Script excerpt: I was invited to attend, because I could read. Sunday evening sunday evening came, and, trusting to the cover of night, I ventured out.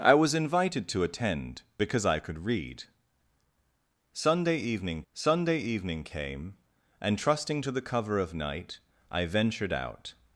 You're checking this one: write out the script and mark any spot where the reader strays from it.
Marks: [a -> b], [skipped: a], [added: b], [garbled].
I was invited to attend, because I could read. Sunday evening sunday evening came, and, trusting to the cover of night, I ventured out.